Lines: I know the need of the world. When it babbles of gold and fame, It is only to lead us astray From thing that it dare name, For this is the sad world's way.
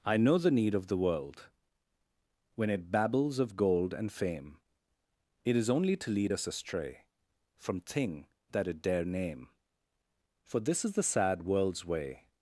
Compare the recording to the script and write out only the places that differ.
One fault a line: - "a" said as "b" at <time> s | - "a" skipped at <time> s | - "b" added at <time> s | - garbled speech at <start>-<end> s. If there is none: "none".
none